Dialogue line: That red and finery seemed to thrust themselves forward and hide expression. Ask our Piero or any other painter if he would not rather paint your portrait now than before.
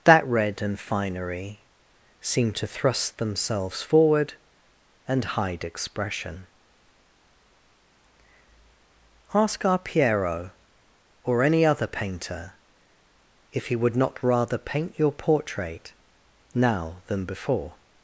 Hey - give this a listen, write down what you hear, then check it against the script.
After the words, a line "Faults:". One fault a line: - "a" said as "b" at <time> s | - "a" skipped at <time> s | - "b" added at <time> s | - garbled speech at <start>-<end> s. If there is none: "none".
That red and finery seemed to thrust themselves forward and hide expression. Ask our Piero or any other painter if he would not rather paint your portrait now than before.
Faults:
none